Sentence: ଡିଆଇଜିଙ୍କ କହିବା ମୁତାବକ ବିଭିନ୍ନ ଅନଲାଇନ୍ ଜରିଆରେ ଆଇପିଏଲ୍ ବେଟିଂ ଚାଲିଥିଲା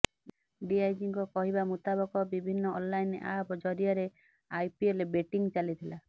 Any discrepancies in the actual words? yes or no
yes